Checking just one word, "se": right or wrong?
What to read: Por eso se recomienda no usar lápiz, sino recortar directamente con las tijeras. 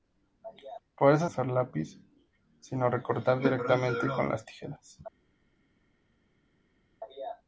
wrong